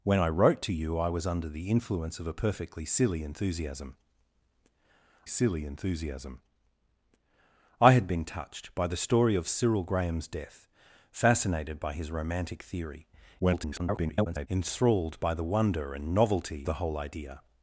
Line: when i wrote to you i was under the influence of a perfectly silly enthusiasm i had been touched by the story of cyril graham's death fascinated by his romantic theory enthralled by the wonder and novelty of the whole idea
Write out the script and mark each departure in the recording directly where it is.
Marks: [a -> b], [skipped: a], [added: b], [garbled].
when i wrote to you i was under the influence of a perfectly silly enthusiasm [added: silly enthusiasm] i had been touched by the story of cyril graham's death fascinated by his romantic theory [garbled] enthralled by the wonder and novelty [skipped: of] the whole idea